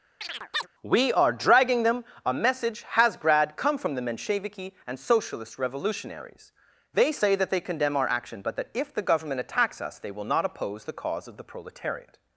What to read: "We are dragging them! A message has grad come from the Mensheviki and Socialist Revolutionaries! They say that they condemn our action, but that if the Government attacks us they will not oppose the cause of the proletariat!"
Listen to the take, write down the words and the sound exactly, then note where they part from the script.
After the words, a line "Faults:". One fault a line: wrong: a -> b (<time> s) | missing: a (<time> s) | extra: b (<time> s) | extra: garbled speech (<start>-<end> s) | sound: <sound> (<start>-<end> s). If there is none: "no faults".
"We are dragging them! A message has grad come from the Mensheviki and Socialist Revolutionaries! They say that they condemn our action, but that if the Government attacks us they will not oppose the cause of the proletariat!"
Faults:
sound: chirp (0.2-0.7 s)